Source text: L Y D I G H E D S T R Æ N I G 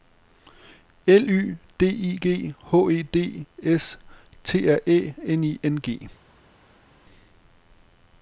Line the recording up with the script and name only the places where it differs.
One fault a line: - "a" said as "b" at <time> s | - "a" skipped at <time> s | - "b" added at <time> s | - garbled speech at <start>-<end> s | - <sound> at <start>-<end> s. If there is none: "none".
- "N" added at 5.6 s